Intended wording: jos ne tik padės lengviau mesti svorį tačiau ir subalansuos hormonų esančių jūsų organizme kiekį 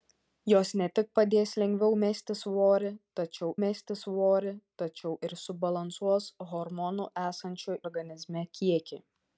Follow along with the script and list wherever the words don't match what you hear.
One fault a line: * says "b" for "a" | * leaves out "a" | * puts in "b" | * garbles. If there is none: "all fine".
* puts in "mesti svorį tačiau"
* leaves out "jūsų"